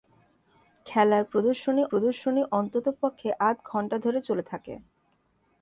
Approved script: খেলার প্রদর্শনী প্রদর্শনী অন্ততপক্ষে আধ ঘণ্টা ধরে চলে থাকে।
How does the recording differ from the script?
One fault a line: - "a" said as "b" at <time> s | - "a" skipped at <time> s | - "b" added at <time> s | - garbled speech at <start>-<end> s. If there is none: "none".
none